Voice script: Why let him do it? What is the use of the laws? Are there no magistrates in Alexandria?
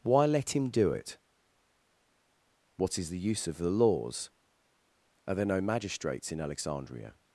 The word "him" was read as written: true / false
true